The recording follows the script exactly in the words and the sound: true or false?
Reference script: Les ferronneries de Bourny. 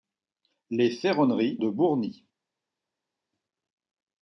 true